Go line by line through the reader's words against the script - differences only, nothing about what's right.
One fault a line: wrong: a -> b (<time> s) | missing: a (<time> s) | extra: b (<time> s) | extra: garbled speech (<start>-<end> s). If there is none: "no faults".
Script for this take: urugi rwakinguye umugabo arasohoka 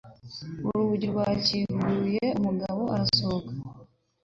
no faults